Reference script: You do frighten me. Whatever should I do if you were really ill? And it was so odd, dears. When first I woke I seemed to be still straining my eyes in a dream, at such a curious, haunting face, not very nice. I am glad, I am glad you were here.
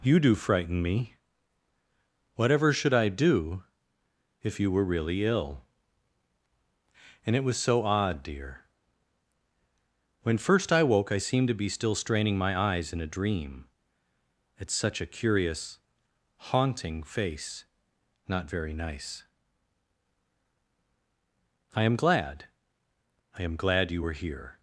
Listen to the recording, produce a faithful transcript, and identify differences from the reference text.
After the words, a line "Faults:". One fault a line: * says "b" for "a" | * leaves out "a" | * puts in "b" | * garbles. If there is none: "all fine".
You do frighten me. Whatever should I do if you were really ill? And it was so odd, dear. When first I woke I seemed to be still straining my eyes in a dream, at such a curious, haunting face, not very nice. I am glad, I am glad you were here.
Faults:
* says "dear" for "dears"